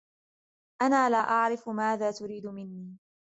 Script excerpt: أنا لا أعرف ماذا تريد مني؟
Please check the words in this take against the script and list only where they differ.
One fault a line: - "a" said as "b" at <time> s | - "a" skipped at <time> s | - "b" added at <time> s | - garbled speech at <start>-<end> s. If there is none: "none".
none